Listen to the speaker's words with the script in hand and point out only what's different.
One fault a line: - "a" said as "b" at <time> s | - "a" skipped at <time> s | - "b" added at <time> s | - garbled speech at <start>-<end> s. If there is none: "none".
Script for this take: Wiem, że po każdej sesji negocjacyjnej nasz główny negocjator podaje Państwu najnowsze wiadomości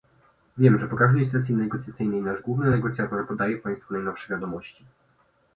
none